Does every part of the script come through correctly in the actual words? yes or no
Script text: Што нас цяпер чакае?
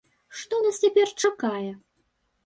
yes